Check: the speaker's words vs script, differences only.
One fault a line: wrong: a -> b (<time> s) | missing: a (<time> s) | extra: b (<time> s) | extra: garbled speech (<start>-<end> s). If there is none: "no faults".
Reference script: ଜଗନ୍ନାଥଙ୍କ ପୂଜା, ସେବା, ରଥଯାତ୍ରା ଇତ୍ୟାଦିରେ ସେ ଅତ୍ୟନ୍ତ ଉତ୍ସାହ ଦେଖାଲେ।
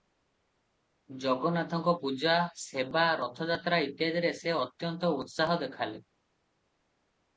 no faults